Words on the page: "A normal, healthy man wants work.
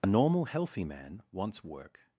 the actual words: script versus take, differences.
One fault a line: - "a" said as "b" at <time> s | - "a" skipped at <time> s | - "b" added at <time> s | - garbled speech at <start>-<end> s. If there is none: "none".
none